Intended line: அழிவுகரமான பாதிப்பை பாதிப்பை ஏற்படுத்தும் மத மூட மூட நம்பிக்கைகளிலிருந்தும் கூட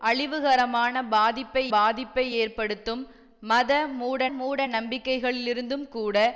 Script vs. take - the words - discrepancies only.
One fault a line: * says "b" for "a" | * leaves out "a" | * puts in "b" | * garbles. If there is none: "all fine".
all fine